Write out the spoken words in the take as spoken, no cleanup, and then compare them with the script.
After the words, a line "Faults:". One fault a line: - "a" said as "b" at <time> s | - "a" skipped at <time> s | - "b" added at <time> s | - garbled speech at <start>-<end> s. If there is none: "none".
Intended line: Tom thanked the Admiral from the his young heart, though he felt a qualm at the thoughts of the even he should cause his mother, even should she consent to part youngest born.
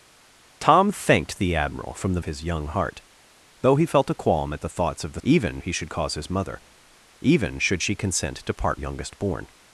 Tom thanked the Admiral from the his young heart, though he felt a qualm at the thoughts of the even he should cause his mother, even should she consent to part youngest born.
Faults:
none